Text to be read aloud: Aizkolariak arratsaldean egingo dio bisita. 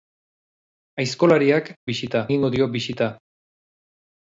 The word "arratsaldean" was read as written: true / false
false